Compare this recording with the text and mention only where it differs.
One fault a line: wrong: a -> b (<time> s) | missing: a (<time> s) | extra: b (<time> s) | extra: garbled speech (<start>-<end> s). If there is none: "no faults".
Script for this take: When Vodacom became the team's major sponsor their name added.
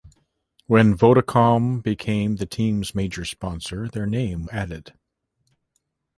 no faults